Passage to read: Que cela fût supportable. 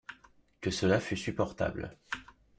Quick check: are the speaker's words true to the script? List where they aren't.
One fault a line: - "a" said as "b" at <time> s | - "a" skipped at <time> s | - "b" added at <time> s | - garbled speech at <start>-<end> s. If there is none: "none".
none